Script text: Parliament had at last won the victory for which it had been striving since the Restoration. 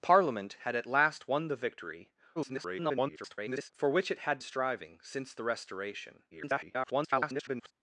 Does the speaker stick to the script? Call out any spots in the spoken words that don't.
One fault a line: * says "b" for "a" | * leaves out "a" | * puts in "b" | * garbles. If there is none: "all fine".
* garbles
* leaves out "been"
* garbles